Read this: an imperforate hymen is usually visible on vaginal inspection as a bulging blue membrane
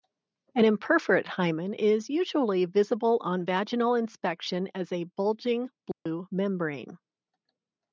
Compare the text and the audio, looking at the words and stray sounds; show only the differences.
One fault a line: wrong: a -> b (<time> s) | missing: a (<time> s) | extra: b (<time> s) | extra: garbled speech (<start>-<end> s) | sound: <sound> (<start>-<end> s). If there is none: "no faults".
sound: dropout (5.9-6.1 s)